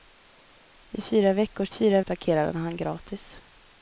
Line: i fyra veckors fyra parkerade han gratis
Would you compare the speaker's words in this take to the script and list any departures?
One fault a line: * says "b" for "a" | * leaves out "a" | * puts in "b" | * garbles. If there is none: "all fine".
all fine